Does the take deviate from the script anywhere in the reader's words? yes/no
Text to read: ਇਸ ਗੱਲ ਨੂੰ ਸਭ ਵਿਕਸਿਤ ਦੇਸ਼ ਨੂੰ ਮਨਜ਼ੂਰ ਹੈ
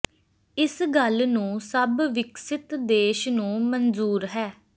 no